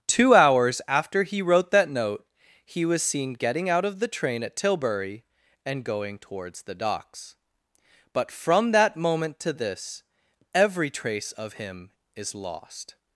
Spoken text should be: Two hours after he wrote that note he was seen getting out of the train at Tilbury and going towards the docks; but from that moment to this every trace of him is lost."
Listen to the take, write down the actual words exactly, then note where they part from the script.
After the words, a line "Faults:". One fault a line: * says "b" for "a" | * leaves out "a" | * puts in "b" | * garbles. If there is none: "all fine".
Two hours after he wrote that note he was seen getting out of the train at Tilbury and going towards the docks; but from that moment to this every trace of him is lost."
Faults:
all fine